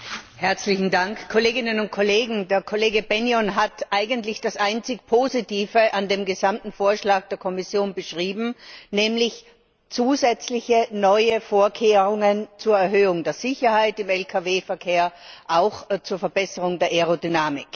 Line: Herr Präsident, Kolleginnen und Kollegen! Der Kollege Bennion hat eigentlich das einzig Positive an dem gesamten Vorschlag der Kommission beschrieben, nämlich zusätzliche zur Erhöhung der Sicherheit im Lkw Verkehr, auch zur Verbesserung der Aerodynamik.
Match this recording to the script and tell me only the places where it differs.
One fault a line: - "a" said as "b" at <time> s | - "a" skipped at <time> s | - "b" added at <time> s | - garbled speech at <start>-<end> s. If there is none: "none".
- "neue Vorkehrungen" added at 10.9 s